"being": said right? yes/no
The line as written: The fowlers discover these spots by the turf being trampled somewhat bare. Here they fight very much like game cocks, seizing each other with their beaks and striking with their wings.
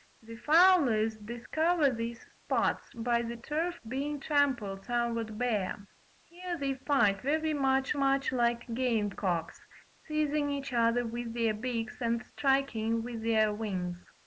yes